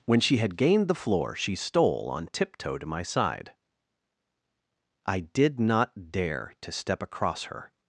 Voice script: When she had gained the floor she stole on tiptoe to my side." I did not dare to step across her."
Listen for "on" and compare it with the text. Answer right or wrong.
right